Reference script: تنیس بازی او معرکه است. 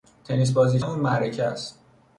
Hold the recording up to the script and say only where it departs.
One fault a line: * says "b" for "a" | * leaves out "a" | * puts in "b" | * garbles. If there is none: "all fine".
all fine